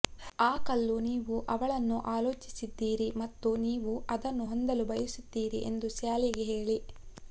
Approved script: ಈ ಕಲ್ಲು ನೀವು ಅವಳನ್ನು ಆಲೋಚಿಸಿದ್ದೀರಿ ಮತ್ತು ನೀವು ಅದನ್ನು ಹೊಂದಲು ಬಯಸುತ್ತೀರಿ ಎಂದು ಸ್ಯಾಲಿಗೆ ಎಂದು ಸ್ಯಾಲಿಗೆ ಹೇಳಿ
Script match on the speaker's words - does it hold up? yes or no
no